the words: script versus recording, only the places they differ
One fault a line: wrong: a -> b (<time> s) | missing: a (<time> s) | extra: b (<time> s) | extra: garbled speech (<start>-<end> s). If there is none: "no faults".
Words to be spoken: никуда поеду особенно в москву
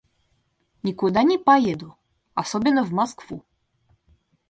extra: не (1.2 s)